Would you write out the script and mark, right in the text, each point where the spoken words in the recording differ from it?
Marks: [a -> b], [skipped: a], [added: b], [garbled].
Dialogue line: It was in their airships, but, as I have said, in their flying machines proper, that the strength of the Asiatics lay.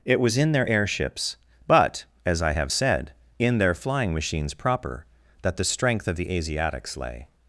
It was in their airships, but, as I have said, in their flying machines proper, that the strength of the Asiatics lay.